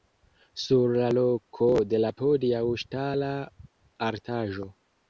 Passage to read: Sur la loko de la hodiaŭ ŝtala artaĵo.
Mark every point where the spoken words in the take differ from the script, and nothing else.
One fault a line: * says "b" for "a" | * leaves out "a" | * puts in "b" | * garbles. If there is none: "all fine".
all fine